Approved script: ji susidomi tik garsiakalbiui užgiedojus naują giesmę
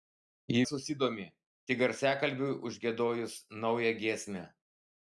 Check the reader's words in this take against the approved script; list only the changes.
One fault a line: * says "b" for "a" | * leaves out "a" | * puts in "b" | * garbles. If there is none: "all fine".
all fine